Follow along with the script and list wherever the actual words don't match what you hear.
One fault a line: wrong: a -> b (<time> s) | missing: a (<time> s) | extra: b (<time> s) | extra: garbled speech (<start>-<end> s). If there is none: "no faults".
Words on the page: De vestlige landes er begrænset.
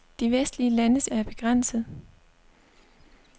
no faults